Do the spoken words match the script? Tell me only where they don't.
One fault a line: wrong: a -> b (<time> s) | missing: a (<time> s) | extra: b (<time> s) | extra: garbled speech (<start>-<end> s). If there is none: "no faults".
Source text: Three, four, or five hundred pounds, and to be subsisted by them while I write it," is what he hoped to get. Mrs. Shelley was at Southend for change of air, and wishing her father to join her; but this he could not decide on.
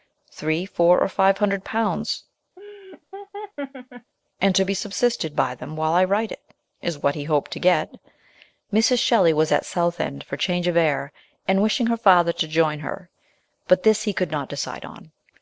no faults